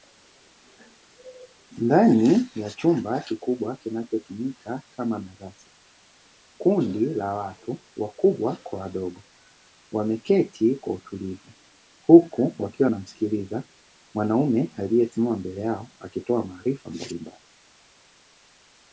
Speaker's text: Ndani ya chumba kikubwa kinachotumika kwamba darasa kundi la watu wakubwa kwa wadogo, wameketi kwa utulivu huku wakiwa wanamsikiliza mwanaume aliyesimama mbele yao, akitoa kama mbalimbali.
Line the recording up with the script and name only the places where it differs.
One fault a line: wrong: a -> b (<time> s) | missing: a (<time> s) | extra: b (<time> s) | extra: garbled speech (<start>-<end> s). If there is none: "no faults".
wrong: kwamba -> kama (4.9 s)
wrong: kama -> maarifa (16.4 s)